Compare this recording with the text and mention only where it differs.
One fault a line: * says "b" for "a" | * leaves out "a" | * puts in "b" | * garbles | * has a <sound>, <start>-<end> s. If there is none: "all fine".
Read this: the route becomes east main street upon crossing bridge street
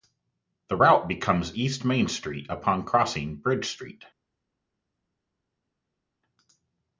all fine